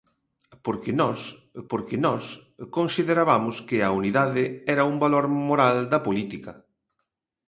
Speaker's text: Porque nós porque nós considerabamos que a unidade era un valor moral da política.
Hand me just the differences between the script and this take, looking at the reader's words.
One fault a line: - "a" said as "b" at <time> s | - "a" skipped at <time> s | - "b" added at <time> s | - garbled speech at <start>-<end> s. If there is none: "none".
none